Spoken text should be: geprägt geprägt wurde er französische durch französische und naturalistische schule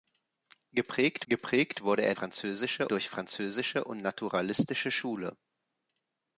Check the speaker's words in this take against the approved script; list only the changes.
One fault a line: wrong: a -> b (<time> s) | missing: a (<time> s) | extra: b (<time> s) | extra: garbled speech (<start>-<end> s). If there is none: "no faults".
no faults